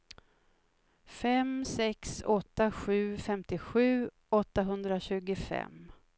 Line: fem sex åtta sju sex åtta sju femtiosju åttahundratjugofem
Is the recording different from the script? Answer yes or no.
yes